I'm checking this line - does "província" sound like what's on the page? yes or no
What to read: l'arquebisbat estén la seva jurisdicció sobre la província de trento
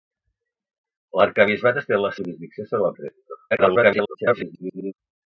no